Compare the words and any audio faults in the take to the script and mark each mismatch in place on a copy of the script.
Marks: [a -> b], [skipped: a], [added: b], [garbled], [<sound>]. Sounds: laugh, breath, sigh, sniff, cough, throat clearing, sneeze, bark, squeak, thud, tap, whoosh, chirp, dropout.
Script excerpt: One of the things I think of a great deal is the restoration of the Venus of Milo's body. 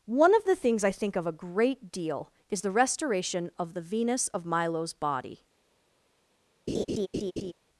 One of the things I think of a great deal is the restoration of the Venus of Milo's body. [laugh]